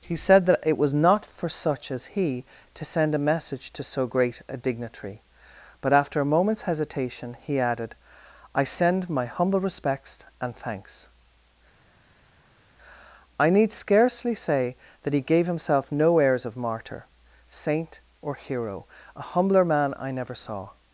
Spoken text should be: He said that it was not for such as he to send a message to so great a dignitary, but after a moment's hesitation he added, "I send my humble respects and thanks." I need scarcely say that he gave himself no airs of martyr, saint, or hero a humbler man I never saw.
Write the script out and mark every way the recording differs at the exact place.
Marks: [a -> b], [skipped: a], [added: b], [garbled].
He said that it was not for such as he to send a message to so great a dignitary, but after a moment's hesitation he added, "I send my humble respects and thanks." I need scarcely say that he gave himself no airs of martyr, saint, or hero a humbler man I never saw.